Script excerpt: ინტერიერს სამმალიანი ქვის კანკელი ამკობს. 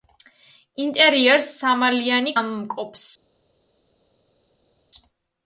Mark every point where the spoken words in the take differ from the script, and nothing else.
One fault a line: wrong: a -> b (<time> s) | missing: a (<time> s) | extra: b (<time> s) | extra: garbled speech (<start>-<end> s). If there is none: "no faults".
missing: ქვის კანკელი (2.3 s)